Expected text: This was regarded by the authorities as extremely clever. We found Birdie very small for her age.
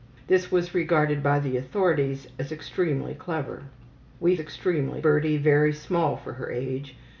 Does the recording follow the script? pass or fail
fail